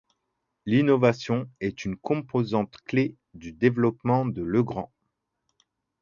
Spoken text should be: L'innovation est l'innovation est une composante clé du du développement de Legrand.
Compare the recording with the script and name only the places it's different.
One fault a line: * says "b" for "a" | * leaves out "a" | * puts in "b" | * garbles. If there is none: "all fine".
* leaves out "l'innovation est"
* leaves out "du"